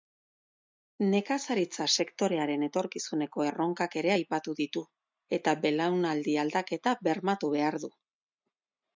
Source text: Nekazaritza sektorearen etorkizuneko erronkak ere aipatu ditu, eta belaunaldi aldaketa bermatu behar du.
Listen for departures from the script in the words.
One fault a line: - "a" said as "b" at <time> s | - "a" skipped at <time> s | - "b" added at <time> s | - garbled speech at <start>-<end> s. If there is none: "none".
none